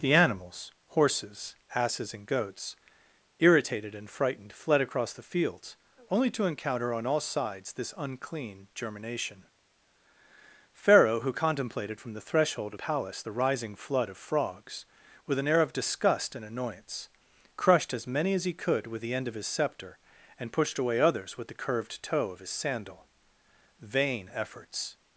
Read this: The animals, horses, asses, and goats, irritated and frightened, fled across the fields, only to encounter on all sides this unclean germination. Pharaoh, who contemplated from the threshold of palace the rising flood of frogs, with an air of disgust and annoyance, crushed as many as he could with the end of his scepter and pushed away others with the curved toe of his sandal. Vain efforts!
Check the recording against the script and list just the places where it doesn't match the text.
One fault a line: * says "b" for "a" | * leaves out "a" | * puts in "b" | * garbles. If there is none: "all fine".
all fine